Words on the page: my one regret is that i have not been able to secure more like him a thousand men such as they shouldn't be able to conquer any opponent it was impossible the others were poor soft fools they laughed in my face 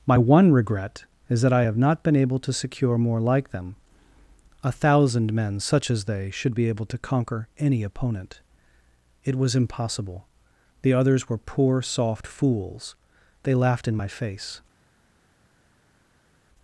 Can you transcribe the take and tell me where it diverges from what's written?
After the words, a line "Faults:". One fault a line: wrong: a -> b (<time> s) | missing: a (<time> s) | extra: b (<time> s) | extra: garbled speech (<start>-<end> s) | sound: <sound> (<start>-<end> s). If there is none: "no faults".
my one regret is that i have not been able to secure more like them a thousand men such as they should be able to conquer any opponent it was impossible the others were poor soft fools they laughed in my face
Faults:
wrong: him -> them (3.5 s)
wrong: shouldn't -> should (6.3 s)